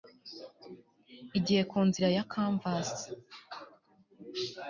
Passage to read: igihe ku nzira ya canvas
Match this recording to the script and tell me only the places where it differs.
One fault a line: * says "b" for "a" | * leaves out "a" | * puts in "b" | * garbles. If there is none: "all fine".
all fine